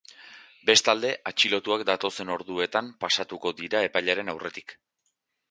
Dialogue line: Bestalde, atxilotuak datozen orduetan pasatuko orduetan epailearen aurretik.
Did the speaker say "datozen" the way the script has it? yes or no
yes